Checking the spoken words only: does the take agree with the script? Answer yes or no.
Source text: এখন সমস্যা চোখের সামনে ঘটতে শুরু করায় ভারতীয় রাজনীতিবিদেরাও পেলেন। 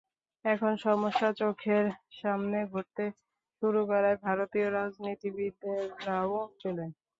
yes